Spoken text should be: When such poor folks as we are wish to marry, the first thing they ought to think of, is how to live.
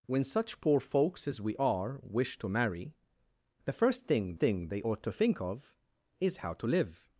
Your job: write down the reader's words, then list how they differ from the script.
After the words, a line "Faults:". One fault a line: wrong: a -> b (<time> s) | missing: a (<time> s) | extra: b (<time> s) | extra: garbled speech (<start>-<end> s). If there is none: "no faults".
When such poor folks as we are wish to marry, the first thing thing they ought to think of, is how to live.
Faults:
extra: thing (4.4 s)